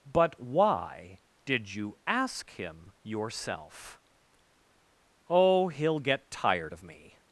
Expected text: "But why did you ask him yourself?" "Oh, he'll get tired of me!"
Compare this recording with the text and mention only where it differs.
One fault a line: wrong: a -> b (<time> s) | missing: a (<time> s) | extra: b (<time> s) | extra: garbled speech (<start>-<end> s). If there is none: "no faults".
no faults